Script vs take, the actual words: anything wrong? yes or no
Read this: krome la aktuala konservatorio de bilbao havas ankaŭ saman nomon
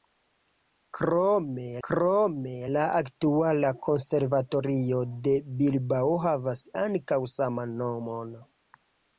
yes